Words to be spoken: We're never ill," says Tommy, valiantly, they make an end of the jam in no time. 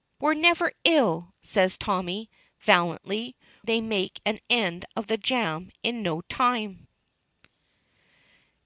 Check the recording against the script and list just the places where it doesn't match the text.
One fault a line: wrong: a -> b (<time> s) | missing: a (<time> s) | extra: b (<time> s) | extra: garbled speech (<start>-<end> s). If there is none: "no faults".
no faults